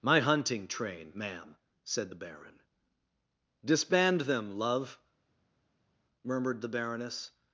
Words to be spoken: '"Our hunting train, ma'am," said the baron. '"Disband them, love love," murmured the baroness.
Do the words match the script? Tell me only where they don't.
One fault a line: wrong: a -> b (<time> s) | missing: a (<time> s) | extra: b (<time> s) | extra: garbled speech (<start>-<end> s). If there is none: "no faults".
wrong: Our -> My (0.0 s)
missing: love (5.0 s)